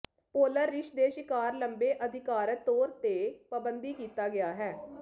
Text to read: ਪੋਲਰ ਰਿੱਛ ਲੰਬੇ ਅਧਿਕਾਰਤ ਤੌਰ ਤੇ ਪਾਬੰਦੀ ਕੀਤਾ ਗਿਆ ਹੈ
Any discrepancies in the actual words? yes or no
yes